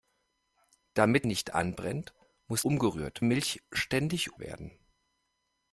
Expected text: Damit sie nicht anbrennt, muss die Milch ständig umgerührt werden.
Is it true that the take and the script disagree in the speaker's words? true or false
true